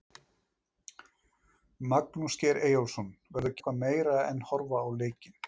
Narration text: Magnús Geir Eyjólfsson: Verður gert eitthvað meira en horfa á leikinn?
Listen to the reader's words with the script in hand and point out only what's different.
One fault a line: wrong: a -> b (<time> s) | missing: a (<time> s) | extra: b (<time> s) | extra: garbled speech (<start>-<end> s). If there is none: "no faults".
missing: gert (3.6 s)